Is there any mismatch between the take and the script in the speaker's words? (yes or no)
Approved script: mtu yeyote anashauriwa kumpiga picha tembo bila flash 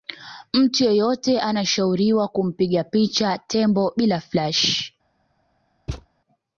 no